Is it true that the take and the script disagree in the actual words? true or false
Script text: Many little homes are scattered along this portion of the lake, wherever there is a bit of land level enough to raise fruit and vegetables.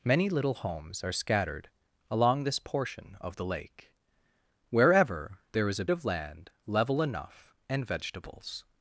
true